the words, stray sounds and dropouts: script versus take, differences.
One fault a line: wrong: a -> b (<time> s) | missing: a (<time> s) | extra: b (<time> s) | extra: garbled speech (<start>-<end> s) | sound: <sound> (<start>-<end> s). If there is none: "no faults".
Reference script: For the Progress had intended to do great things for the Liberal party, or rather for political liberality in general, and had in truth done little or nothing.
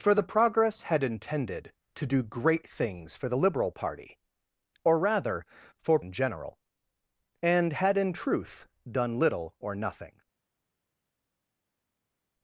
missing: political liberality (6.0 s)